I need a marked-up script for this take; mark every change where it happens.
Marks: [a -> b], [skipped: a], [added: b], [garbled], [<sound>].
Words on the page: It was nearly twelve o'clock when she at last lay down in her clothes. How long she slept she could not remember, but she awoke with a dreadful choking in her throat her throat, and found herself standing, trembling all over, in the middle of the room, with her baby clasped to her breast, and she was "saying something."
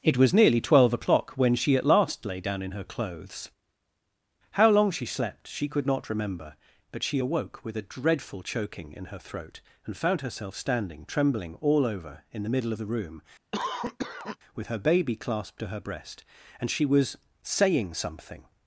It was nearly twelve o'clock when she at last lay down in her clothes. How long she slept she could not remember, but she awoke with a dreadful choking in her throat [skipped: her throat,] and found herself standing, trembling all over, in the middle of the room, [cough] with her baby clasped to her breast, and she was "saying something."